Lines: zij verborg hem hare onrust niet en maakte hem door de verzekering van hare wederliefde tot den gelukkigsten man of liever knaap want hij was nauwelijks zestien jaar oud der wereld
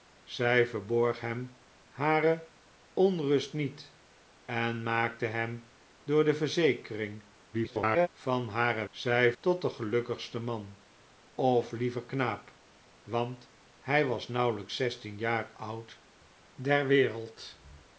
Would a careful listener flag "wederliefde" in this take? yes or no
yes